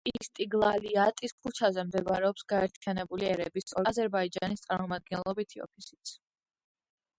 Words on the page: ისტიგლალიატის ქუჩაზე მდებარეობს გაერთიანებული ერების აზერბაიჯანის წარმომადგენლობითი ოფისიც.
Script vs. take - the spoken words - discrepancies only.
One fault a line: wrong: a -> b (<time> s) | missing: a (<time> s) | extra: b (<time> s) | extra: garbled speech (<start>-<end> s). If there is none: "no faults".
no faults